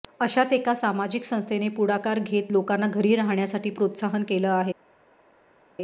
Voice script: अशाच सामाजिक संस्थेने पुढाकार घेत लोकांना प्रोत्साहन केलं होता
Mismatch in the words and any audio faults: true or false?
true